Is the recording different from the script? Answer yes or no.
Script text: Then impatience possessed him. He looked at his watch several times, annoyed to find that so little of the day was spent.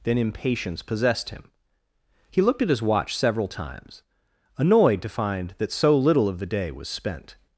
no